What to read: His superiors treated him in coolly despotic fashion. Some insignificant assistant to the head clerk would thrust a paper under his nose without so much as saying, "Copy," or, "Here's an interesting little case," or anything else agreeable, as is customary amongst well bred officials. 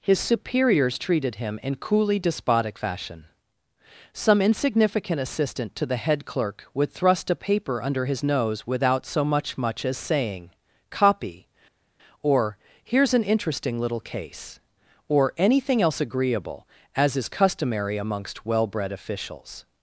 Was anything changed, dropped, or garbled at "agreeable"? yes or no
no